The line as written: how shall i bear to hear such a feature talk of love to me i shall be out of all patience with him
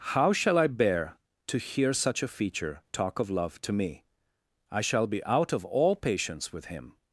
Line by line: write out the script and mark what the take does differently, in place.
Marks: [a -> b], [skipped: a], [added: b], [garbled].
how shall i bear to hear such a feature talk of love to me i shall be out of all patience with him